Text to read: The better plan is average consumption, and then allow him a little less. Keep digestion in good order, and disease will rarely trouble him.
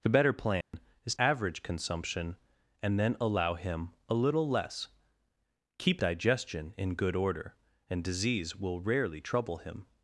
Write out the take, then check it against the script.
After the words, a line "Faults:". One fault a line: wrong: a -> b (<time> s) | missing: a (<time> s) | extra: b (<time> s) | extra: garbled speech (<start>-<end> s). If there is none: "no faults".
The better plan is average consumption, and then allow him a little less. Keep digestion in good order, and disease will rarely trouble him.
Faults:
no faults